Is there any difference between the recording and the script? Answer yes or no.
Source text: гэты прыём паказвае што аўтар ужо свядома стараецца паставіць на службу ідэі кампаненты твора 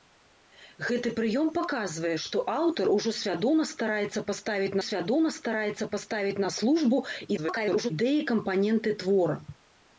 yes